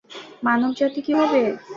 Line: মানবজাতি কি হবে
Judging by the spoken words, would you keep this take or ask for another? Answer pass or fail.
pass